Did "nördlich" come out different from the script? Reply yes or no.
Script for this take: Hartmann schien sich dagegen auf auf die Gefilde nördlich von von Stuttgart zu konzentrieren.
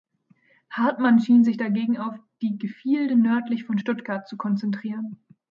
no